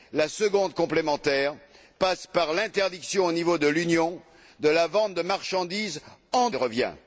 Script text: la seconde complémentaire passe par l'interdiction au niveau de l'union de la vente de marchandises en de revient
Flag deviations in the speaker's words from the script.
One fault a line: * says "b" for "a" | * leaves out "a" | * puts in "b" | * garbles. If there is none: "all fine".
all fine